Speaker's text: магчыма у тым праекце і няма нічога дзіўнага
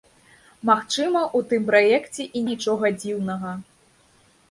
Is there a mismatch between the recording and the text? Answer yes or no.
yes